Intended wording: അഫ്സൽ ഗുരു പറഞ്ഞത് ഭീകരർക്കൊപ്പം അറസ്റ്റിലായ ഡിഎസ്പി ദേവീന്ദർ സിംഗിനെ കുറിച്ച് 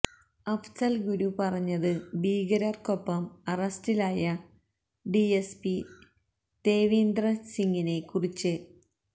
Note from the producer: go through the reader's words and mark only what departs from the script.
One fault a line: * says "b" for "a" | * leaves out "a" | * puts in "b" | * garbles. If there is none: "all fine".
all fine